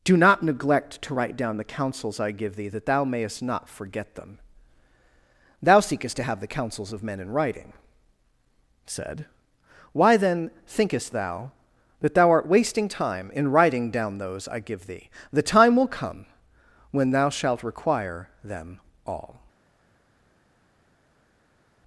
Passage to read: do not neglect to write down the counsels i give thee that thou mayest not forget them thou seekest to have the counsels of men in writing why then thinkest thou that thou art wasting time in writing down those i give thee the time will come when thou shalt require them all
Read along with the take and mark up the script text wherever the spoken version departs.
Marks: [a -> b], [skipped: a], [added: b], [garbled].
do not neglect to write down the counsels i give thee that thou mayest not forget them thou seekest to have the counsels of men in writing [added: said] why then thinkest thou that thou art wasting time in writing down those i give thee the time will come when thou shalt require them all